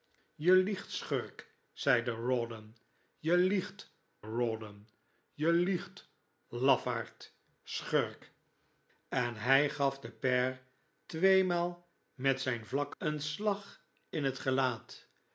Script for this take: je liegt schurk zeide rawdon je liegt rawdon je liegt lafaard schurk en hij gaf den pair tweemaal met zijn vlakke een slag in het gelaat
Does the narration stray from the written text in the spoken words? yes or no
no